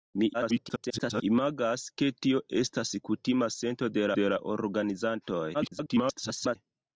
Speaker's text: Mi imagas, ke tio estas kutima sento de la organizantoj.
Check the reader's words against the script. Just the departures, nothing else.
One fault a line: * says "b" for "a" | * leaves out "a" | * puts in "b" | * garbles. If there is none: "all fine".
* garbles
* puts in "de"
* garbles